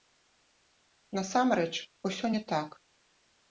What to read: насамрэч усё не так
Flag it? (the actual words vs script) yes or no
no